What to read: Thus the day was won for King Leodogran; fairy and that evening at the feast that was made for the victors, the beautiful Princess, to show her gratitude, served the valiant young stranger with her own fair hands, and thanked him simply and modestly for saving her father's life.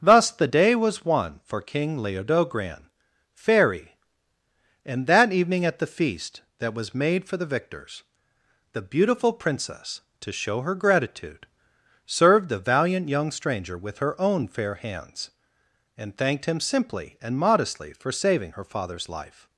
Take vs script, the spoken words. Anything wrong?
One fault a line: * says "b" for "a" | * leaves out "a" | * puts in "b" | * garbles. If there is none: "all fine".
all fine